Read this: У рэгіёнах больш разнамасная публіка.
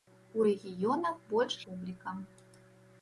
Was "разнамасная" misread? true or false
true